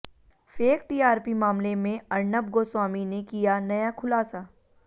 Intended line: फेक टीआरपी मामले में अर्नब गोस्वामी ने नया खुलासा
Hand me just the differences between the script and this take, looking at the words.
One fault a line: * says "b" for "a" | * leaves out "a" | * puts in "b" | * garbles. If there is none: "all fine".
* puts in "किया"